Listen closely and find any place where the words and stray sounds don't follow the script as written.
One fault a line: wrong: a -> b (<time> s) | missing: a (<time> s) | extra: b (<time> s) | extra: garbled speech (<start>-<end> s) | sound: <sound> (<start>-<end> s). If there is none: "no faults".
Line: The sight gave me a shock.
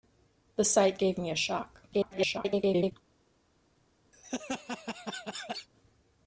extra: garbled speech (1.9-2.9 s)
sound: laugh (4.1-5.7 s)